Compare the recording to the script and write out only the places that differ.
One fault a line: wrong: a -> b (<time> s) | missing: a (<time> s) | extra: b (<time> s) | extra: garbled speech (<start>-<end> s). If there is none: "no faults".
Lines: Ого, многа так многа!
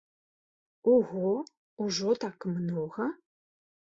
wrong: многа -> ужо (1.8 s)